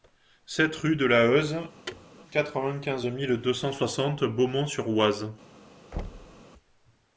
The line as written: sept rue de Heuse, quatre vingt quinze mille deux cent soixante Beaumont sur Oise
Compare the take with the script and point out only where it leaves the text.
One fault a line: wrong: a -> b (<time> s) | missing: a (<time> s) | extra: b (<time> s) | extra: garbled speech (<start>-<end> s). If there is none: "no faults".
extra: la (1.1 s)